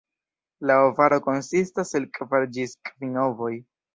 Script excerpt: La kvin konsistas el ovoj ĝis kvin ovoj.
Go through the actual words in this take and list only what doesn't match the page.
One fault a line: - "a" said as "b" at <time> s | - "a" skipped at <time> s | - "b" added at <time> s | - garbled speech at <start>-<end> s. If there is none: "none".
- "kvin" said as "ovaro" at 0.8 s
- "ovoj" said as "kvar" at 2.2 s